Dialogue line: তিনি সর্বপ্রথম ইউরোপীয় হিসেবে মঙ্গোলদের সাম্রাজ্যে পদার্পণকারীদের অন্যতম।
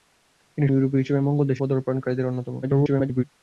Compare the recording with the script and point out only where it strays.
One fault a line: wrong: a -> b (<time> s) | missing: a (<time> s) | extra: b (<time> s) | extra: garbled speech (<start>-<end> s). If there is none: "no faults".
missing: সর্বপ্রথম (0.7 s)
missing: সাম্রাজ্যে (1.6 s)
extra: garbled speech (2.6-3.2 s)